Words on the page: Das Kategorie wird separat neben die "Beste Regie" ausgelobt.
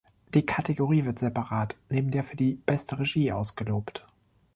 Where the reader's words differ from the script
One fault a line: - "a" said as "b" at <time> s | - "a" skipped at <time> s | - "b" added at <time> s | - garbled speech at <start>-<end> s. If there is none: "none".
- "Das" said as "Die" at 0.3 s
- "der für" added at 2.1 s